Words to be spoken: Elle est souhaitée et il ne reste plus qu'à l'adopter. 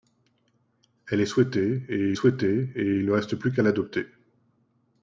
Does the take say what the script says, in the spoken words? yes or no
no